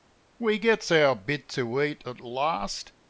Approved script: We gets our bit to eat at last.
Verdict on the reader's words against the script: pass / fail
pass